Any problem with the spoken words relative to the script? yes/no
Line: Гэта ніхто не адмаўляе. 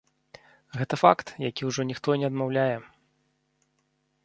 yes